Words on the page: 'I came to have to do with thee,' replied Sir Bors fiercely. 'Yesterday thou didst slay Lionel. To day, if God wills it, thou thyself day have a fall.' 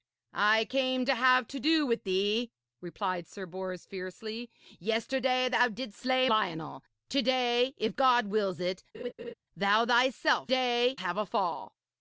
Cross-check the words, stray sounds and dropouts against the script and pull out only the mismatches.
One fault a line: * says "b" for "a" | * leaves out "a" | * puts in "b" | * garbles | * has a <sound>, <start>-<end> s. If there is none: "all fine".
* has a laugh, 8.9-9.3 s